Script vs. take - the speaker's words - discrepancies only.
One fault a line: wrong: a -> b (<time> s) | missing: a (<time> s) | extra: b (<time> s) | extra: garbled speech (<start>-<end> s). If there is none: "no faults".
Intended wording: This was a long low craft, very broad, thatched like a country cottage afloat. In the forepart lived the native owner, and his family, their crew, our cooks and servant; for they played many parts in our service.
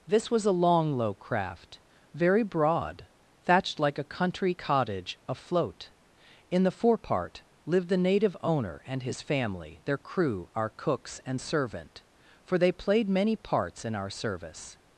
no faults